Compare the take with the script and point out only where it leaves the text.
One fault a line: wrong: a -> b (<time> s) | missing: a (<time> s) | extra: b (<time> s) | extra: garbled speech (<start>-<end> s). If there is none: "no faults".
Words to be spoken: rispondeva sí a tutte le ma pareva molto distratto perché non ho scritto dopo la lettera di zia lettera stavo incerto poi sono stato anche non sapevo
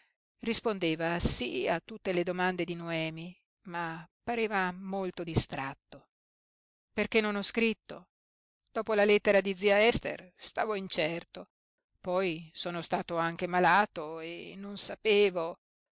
extra: domande di noemi (2.2 s)
wrong: lettera -> ester (9.9 s)
extra: malato e (13.5 s)